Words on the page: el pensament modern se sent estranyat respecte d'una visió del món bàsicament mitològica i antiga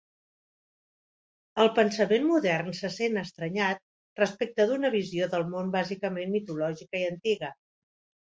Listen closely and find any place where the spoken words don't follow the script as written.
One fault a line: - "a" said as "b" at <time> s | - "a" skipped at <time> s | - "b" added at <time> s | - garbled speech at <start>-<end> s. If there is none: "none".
none